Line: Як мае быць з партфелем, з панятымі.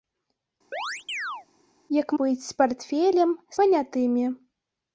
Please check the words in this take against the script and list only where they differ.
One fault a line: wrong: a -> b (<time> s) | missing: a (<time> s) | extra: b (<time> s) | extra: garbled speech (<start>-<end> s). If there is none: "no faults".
missing: мае (2.1 s)
missing: з (3.3 s)